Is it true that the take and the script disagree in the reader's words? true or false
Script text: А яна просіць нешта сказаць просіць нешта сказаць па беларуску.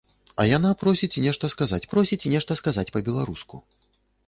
false